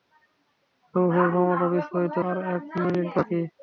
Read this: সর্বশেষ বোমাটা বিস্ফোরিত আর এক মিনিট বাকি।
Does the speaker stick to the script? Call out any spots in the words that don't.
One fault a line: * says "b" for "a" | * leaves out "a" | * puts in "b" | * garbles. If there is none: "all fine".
all fine